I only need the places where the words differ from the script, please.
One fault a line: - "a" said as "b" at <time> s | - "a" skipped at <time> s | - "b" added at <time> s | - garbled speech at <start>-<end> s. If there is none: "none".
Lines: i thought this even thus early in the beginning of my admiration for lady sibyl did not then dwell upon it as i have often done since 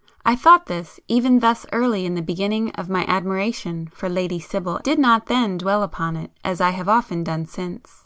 none